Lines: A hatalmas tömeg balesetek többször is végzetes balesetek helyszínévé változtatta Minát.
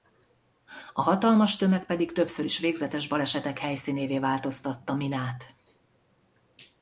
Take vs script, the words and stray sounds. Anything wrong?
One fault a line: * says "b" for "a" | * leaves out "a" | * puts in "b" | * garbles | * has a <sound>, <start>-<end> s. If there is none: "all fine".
* says "pedig" for "balesetek"